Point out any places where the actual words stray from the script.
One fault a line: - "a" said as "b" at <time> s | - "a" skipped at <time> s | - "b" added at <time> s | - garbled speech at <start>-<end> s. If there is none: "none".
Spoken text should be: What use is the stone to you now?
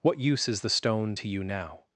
none